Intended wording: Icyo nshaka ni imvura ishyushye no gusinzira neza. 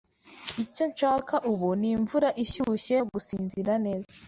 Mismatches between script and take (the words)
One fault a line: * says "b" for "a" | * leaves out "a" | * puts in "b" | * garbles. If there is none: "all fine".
* puts in "ubu"